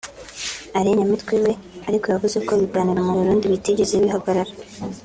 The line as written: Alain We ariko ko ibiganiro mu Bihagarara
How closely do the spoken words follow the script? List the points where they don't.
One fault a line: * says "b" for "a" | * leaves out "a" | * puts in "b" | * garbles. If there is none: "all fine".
* puts in "Nyamitwe"
* puts in "yavuze"
* puts in "Burundi bitigeze"